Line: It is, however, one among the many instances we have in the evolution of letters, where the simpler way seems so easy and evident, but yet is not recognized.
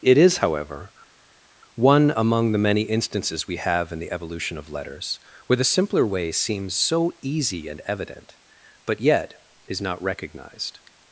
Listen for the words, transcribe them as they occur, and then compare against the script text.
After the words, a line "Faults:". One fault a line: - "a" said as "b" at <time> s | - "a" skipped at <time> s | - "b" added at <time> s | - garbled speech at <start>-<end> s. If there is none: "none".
It is, however, one among the many instances we have in the evolution of letters, where the simpler way seems so easy and evident, but yet is not recognized.
Faults:
none